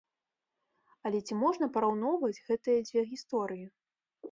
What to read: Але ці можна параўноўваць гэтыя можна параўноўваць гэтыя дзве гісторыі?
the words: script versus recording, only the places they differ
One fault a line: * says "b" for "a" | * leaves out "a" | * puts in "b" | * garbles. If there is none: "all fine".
* leaves out "можна параўноўваць гэтыя"